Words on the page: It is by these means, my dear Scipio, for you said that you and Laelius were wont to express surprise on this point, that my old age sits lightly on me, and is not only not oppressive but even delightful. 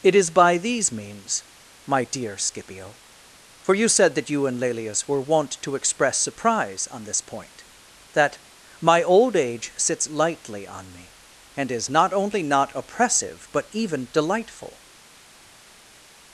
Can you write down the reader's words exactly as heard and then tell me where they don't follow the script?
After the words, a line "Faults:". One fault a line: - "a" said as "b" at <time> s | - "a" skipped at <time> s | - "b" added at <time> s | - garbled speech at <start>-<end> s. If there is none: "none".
It is by these means, my dear Scipio, for you said that you and Laelius were wont to express surprise on this point, that my old age sits lightly on me, and is not only not oppressive but even delightful.
Faults:
none